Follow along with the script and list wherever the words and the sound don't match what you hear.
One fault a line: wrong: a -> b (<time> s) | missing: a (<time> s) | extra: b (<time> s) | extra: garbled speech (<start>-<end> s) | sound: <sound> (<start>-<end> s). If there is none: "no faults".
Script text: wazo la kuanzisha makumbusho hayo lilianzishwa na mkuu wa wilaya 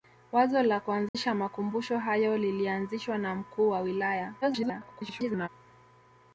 sound: dropout (1.1-1.1 s)
extra: garbled speech (4.4-5.5 s)